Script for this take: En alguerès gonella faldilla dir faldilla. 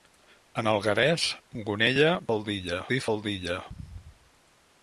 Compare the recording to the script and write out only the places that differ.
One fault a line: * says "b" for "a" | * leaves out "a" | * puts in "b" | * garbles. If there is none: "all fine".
all fine